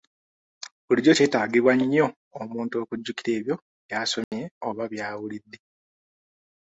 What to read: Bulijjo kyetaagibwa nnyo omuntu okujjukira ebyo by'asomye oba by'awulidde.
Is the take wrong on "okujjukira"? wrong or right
right